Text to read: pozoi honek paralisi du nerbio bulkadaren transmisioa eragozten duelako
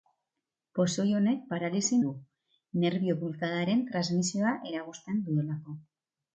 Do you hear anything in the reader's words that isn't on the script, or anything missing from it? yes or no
no